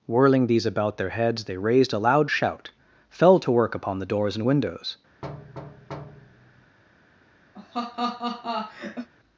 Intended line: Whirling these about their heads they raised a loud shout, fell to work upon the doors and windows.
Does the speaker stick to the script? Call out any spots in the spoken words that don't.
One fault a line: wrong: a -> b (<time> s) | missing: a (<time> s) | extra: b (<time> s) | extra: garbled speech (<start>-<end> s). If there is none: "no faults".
no faults